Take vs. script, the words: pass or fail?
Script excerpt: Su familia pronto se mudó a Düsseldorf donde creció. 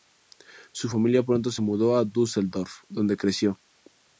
pass